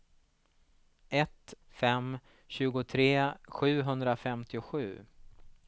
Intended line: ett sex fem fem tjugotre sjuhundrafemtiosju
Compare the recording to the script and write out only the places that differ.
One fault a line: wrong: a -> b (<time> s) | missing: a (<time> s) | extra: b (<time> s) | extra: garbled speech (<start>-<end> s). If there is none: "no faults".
missing: sex fem (1.5 s)